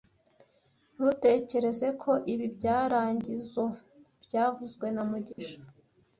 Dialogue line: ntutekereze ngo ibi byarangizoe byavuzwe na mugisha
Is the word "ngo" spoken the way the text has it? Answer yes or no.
no